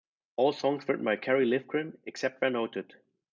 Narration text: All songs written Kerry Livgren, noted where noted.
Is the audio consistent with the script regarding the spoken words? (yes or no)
no